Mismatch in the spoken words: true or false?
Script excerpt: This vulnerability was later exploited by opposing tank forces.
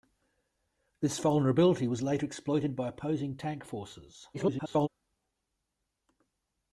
true